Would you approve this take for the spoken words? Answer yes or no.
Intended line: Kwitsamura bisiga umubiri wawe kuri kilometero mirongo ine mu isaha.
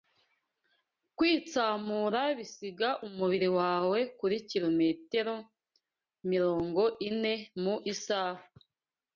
yes